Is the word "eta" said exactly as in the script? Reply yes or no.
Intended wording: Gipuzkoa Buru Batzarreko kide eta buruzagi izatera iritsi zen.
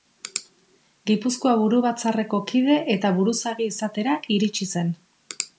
yes